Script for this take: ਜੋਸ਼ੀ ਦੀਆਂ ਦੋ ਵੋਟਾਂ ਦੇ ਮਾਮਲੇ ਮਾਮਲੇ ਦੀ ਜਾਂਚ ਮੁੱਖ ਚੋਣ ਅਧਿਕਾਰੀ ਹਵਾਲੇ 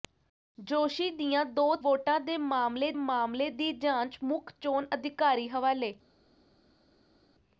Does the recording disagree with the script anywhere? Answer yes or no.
no